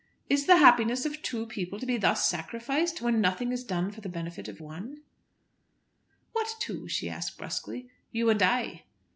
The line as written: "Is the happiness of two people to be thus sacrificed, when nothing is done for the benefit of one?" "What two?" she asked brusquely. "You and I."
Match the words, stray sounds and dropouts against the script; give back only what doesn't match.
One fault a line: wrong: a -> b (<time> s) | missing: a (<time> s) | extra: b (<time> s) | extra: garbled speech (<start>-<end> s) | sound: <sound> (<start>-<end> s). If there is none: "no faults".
no faults